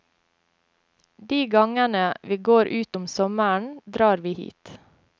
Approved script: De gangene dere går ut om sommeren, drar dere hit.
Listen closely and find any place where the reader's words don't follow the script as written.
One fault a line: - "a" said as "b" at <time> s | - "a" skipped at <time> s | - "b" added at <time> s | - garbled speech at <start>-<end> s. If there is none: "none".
- "dere" said as "vi" at 2.2 s
- "dere" said as "vi" at 4.2 s